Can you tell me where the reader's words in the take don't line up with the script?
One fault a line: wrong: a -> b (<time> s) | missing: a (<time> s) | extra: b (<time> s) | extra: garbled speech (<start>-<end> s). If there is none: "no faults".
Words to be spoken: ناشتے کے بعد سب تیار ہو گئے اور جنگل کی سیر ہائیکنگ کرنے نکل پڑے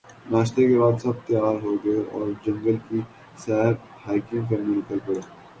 no faults